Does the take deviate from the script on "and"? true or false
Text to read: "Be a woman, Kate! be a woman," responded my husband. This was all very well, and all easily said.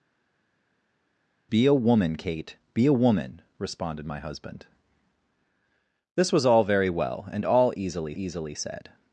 false